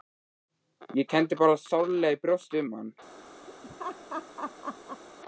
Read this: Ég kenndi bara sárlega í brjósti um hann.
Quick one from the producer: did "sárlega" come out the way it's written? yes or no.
yes